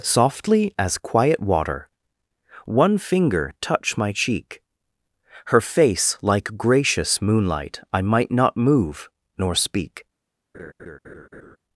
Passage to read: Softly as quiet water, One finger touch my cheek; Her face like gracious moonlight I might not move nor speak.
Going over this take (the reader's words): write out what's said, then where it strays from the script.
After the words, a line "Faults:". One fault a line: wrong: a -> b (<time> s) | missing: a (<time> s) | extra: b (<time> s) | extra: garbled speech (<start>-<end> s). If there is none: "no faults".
Softly as quiet water, One finger touch my cheek; Her face like gracious moonlight I might not move nor speak.
Faults:
no faults